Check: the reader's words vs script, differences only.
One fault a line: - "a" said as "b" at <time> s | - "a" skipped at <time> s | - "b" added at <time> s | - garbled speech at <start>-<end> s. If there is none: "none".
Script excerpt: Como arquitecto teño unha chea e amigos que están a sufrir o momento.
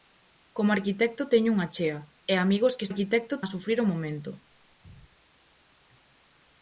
- "están" said as "arquitecto" at 2.9 s